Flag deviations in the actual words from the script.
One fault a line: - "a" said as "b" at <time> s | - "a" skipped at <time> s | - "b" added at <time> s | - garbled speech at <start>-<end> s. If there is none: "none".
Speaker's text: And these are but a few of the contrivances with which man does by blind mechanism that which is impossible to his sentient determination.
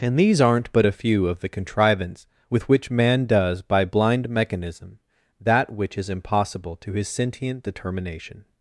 - "are" said as "aren't" at 0.4 s
- "contrivances" said as "contrivance" at 1.5 s